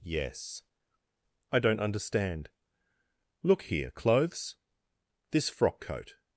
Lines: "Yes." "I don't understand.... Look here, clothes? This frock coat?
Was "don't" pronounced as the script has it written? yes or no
yes